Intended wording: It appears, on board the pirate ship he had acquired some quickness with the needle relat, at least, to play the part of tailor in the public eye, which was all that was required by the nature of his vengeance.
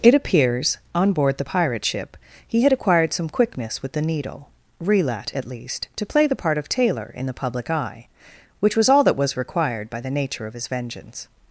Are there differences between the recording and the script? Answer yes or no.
no